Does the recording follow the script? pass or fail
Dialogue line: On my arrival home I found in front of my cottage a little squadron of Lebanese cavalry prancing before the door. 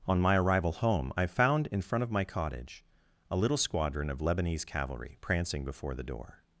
pass